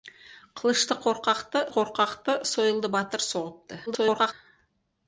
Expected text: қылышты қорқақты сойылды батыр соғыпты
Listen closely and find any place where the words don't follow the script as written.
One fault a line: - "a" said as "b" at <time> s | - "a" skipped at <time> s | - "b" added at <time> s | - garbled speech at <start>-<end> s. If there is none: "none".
- "қорқақты" added at 1.7 s
- garbled speech at 3.9-4.3 s